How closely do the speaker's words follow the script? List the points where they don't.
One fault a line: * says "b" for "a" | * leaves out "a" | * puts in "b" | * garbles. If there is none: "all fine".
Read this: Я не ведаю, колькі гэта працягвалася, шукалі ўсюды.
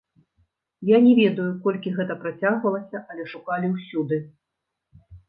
* puts in "але"